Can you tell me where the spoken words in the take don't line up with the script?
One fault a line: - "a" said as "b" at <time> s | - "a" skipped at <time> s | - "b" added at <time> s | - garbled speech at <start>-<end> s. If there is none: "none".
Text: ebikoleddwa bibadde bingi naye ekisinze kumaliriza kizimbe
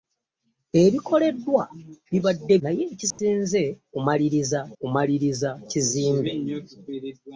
- "bingi" skipped at 2.5 s
- "kumaliriza" added at 4.8 s